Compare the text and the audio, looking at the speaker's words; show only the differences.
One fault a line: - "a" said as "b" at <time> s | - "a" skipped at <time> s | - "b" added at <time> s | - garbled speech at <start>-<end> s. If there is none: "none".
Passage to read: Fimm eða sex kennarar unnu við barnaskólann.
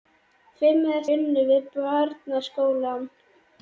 - "sex kennarar" skipped at 1.0 s